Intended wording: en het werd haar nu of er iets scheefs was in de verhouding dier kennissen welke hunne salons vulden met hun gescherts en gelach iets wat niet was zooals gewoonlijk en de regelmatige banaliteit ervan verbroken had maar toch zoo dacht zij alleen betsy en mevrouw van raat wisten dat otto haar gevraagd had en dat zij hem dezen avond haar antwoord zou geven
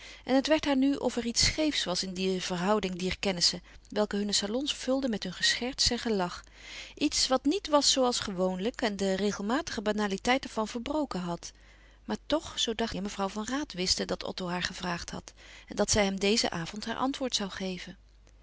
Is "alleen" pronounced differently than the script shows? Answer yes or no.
yes